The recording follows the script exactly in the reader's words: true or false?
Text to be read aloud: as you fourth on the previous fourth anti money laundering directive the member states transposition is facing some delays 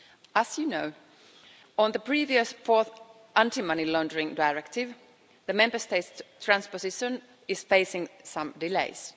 false